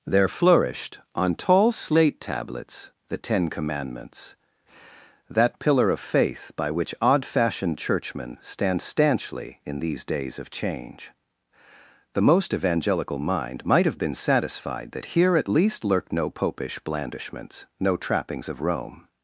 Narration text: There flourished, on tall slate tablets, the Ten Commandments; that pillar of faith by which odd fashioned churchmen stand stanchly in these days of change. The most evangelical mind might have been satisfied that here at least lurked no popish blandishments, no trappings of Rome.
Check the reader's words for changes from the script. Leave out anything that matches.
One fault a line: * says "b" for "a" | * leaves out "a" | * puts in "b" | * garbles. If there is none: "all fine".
all fine